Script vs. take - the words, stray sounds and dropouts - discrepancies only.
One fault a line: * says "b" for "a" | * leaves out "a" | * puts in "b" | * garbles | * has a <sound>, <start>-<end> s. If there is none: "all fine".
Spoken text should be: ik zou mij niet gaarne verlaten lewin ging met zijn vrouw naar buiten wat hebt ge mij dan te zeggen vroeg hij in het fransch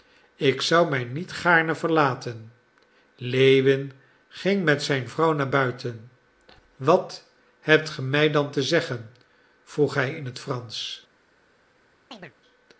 * has a chirp, 12.1-12.3 s